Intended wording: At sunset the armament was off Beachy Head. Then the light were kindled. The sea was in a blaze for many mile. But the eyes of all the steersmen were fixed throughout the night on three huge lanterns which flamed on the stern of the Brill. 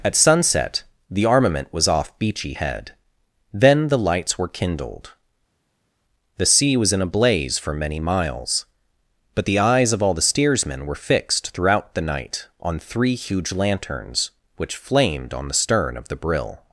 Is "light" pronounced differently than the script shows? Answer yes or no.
yes